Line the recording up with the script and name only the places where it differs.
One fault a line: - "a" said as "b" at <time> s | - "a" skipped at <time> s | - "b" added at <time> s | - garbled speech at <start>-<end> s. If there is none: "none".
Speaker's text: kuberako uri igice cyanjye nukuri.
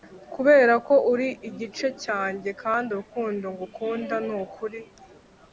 - "kandi urukundo ngukunda" added at 2.6 s